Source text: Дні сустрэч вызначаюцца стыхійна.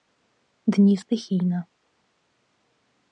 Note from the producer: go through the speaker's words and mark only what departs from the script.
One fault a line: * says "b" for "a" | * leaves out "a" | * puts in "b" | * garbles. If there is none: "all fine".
* leaves out "сустрэч вызначаюцца"